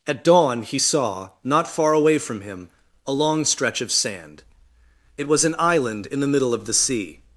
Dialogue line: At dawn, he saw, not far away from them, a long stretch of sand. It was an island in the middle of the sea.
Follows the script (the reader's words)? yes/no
no